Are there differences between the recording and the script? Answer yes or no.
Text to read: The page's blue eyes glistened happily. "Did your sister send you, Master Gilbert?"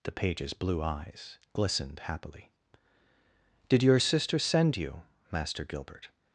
no